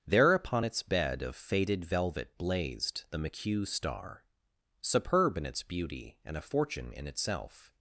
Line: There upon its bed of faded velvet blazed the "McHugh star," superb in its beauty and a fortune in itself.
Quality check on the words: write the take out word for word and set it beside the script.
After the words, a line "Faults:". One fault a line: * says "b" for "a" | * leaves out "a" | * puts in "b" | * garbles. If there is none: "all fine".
There upon its bed of faded velvet blazed the "McHugh star," superb in its beauty and a fortune in itself.
Faults:
all fine